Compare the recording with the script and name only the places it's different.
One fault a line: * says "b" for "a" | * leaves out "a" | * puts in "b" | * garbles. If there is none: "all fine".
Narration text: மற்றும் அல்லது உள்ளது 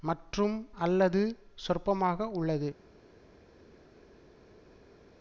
* puts in "சொற்பமாக"